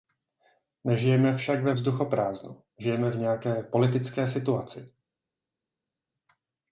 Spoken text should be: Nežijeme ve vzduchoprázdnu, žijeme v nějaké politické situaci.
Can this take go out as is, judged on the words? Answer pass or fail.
fail